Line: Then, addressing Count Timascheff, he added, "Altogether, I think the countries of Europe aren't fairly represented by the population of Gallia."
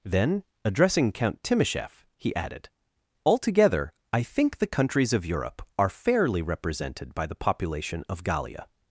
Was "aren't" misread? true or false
true